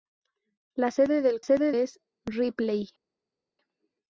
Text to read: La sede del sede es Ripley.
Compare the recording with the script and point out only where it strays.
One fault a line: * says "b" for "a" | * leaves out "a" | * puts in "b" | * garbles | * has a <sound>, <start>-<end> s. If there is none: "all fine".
all fine